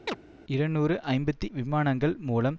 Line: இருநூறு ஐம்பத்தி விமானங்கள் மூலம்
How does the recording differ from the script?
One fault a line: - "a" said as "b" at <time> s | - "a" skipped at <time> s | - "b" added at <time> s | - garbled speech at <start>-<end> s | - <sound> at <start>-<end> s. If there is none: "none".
- chirp at 0.1-0.2 s